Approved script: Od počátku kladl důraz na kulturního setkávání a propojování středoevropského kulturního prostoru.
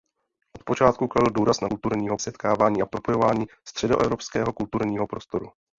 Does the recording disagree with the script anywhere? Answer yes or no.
no